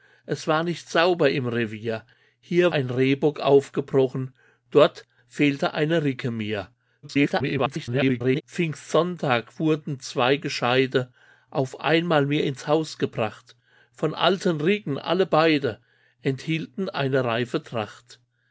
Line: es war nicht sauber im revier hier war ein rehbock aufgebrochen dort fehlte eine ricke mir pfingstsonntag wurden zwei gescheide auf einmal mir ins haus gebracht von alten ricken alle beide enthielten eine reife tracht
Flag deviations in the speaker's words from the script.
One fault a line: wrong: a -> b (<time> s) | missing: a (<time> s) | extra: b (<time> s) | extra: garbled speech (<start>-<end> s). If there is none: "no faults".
missing: war (2.7 s)
extra: garbled speech (7.0-8.4 s)